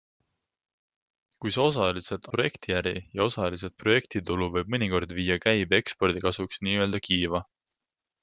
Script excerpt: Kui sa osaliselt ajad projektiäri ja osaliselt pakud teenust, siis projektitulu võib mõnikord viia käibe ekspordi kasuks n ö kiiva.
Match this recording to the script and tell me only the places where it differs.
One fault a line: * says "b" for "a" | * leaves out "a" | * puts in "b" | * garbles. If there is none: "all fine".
* leaves out "ajad"
* leaves out "pakud teenust siis"